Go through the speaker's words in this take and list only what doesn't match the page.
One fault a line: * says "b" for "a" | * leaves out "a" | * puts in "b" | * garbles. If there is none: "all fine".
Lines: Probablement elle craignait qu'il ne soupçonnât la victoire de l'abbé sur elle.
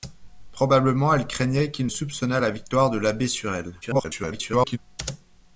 * leaves out "ne"
* garbles